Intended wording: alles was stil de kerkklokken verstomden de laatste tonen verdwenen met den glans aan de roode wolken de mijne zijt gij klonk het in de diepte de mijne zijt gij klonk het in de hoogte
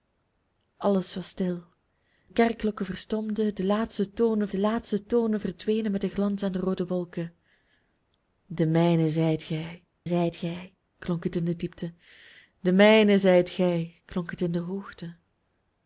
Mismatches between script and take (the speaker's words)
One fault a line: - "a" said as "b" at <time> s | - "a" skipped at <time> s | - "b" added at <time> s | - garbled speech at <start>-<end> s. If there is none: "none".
- "de" skipped at 1.6 s
- "de laatste tonen" added at 4.5 s
- "zijt gij" added at 10.0 s